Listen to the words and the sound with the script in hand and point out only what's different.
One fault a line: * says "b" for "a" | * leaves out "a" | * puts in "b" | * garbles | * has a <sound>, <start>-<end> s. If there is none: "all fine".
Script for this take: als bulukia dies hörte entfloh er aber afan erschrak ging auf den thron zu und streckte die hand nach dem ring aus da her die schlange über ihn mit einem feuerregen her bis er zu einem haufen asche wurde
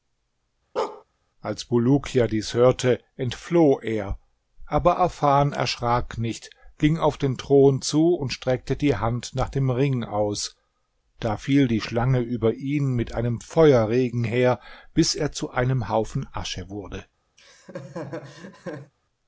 * has a bark, 0.8-1.0 s
* puts in "nicht"
* says "fiel" for "her"
* has a laugh, 17.4-18.9 s